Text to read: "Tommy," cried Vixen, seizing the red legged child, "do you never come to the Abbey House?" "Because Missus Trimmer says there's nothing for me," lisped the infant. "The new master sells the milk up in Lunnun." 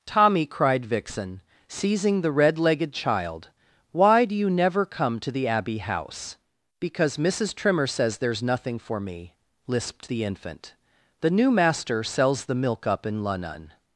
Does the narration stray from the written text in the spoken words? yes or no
yes